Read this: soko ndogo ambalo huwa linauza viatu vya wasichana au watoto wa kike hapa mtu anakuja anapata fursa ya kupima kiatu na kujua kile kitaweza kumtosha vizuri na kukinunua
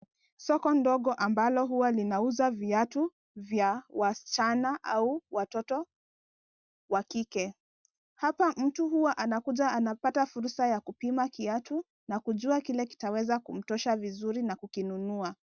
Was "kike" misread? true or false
false